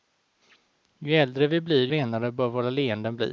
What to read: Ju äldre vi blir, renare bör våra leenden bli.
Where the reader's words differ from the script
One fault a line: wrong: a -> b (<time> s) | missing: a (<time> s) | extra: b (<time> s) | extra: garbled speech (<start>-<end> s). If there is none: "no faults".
no faults